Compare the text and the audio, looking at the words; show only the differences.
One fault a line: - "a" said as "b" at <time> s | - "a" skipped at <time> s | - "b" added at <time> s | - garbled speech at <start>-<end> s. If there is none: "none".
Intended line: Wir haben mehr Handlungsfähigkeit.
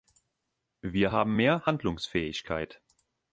none